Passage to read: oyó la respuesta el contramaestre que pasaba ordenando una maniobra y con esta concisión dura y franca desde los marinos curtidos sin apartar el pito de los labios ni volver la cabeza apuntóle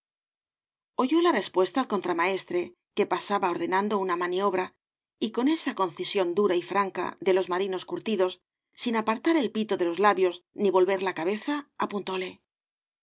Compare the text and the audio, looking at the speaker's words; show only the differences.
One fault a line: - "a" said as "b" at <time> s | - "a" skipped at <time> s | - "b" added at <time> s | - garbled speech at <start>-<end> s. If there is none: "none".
- "esta" said as "esa" at 5.5 s
- "desde" said as "de" at 7.2 s